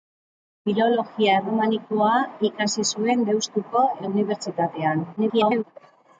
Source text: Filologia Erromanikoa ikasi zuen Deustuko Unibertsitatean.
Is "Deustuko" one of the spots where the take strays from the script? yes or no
no